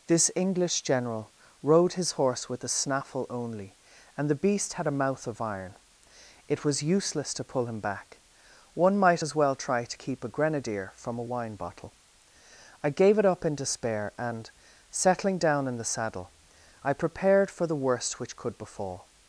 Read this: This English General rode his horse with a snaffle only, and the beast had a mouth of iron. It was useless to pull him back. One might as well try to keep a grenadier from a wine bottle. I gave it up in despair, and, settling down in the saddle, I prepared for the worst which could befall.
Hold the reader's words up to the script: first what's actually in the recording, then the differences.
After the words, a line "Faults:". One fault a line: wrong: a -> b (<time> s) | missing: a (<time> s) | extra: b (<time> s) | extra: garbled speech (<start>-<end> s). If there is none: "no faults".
This English General rode his horse with a snaffle only, and the beast had a mouth of iron. It was useless to pull him back. One might as well try to keep a grenadier from a wine bottle. I gave it up in despair, and, settling down in the saddle, I prepared for the worst which could befall.
Faults:
no faults